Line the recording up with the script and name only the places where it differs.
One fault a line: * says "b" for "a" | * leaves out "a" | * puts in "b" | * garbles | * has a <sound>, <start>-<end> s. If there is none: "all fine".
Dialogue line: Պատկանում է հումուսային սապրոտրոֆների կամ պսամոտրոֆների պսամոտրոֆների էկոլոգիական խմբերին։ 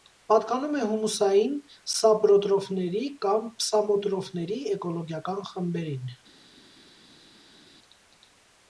* leaves out "պսամոտրոֆների"